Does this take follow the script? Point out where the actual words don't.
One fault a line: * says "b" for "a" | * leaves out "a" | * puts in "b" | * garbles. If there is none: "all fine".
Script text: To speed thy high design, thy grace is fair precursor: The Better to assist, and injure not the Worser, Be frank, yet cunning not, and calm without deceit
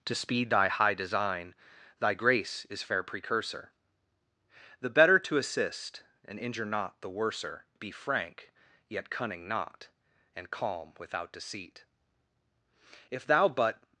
* puts in "If thou but"